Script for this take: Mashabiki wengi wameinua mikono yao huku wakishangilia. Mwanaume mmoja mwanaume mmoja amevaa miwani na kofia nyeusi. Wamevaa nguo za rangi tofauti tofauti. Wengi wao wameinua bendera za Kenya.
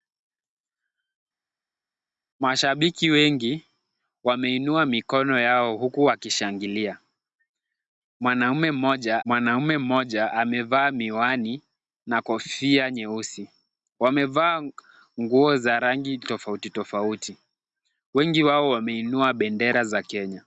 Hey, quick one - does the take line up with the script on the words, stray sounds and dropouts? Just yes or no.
yes